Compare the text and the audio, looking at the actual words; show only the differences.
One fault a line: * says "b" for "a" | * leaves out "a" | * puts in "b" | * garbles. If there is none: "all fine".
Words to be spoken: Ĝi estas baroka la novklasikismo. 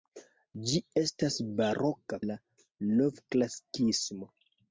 all fine